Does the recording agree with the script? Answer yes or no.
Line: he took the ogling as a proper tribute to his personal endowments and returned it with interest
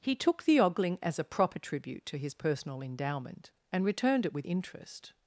no